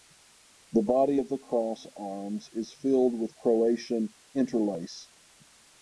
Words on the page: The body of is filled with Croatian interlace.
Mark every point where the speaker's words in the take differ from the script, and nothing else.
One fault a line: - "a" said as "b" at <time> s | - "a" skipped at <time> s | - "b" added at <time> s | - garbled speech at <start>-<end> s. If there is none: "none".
- "the cross arms" added at 1.3 s